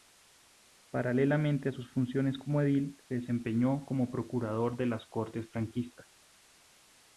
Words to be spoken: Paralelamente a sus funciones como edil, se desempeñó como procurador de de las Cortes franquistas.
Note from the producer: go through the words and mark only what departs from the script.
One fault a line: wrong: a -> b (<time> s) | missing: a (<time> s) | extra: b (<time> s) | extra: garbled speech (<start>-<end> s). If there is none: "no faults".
missing: de (4.9 s)